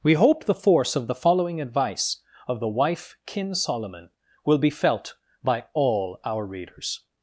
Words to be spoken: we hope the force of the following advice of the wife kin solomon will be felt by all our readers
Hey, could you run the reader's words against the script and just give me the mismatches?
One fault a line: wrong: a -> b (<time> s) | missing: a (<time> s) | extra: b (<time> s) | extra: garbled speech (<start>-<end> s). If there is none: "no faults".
no faults